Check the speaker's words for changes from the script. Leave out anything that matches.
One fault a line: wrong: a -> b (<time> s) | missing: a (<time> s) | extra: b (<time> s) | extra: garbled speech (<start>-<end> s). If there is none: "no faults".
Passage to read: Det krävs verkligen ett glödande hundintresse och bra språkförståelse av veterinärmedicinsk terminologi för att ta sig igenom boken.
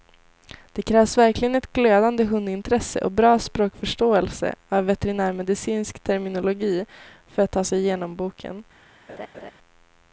no faults